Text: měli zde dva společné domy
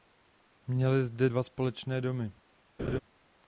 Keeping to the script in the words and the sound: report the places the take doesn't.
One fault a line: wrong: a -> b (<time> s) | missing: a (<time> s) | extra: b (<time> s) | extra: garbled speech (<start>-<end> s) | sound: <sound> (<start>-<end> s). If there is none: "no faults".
sound: laugh (2.8-3.0 s)